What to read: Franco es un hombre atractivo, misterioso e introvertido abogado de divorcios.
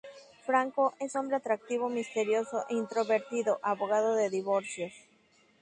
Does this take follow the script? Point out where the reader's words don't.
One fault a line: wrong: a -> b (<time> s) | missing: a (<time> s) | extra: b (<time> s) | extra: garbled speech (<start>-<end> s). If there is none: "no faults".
missing: un (1.1 s)